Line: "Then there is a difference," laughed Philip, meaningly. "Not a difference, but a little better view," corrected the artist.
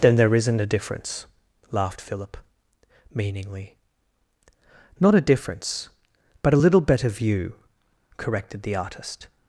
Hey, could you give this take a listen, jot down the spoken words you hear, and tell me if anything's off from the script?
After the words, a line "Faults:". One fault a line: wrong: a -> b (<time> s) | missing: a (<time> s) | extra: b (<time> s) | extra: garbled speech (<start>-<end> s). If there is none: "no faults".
"Then there isn't a difference," laughed Philip, meaningly. "Not a difference, but a little better view," corrected the artist.
Faults:
wrong: is -> isn't (0.3 s)